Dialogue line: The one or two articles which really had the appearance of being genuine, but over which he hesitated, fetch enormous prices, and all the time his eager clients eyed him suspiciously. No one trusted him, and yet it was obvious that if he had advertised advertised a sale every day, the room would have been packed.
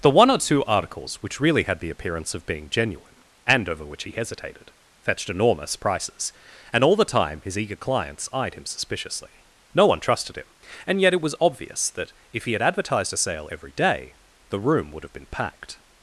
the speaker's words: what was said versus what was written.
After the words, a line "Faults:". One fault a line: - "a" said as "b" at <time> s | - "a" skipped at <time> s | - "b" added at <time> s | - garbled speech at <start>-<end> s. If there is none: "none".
The one or two articles which really had the appearance of being genuine, and over which he hesitated, fetched enormous prices, and all the time his eager clients eyed him suspiciously. No one trusted him, and yet it was obvious that if he had advertised a sale every day, the room would have been packed.
Faults:
- "but" said as "and" at 3.5 s
- "fetch" said as "fetched" at 5.0 s
- "advertised" skipped at 13.1 s